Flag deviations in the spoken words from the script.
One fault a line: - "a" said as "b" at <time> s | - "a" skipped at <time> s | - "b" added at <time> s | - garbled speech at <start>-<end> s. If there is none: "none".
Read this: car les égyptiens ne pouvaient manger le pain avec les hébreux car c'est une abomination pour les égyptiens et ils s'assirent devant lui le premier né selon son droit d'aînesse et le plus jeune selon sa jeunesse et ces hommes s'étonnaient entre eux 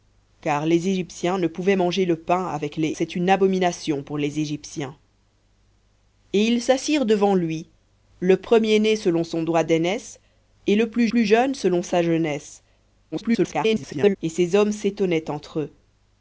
- "hébreux car" skipped at 2.9 s
- "plus" added at 11.1 s
- garbled speech at 13.1-14.2 s